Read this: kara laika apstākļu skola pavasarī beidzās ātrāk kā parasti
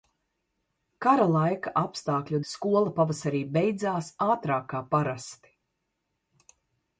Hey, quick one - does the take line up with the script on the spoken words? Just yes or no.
yes